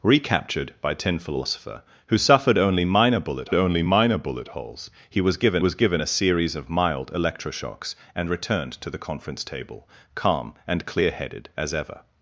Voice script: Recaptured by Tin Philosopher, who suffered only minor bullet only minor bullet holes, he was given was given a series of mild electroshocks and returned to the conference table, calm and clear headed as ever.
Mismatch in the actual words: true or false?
false